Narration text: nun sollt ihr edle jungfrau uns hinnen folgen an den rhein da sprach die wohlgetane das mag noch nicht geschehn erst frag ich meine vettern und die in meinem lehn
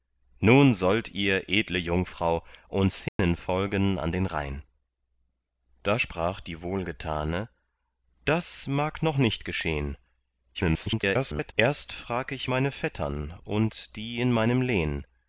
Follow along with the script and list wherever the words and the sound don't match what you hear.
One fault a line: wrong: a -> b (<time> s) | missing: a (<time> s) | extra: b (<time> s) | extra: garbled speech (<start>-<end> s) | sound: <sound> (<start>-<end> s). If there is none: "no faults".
sound: dropout (3.1-3.2 s)
extra: garbled speech (10.5-11.5 s)